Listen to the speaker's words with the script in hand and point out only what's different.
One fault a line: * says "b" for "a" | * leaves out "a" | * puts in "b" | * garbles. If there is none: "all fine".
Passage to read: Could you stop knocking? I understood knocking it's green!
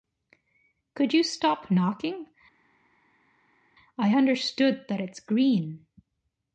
* says "that" for "knocking"